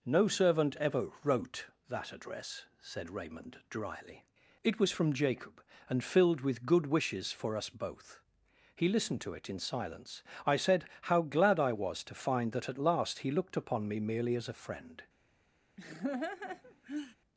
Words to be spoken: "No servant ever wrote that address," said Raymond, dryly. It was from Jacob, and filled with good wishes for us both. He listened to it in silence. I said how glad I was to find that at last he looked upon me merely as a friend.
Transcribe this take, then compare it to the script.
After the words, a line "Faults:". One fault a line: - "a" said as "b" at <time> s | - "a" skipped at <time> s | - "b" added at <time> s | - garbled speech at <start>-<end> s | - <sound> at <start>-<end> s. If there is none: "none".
"No servant ever wrote that address," said Raymond, dryly. It was from Jacob, and filled with good wishes for us both. He listened to it in silence. I said how glad I was to find that at last he looked upon me merely as a friend.
Faults:
- laugh at 15.8-17.2 s